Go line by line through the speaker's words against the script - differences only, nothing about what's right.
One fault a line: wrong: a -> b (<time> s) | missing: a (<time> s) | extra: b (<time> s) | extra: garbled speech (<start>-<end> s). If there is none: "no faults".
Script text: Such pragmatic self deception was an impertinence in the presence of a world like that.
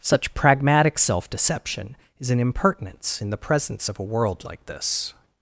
wrong: was -> is (2.2 s)
wrong: that -> this (4.7 s)